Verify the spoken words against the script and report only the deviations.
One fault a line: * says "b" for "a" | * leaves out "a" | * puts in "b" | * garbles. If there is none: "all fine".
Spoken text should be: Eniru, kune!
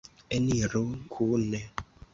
all fine